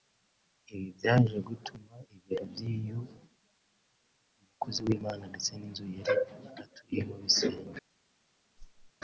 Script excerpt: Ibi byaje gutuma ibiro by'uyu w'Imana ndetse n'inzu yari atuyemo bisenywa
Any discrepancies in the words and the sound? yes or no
yes